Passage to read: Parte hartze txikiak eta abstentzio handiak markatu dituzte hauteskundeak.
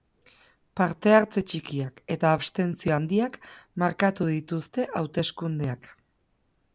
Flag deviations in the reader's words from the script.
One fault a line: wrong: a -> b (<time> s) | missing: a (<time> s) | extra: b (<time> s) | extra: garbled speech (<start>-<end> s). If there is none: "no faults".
no faults